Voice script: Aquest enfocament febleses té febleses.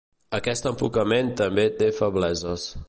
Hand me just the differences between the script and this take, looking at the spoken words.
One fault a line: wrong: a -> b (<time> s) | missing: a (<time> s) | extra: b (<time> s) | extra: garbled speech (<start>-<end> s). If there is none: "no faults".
wrong: febleses -> també (1.4 s)